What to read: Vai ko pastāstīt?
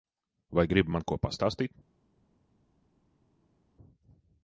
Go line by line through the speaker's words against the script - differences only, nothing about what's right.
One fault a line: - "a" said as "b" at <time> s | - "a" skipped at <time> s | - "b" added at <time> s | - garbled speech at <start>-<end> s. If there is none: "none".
- "gribi man" added at 0.7 s